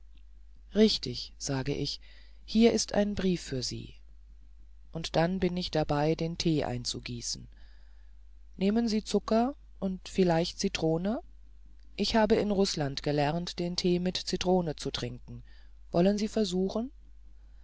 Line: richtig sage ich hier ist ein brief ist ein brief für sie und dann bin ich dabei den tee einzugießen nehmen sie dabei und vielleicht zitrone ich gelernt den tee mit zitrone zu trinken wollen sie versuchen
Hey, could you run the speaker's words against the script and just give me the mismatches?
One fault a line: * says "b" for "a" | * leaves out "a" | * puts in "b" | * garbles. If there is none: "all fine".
* leaves out "ist ein brief"
* says "zucker" for "dabei"
* puts in "habe in rußland"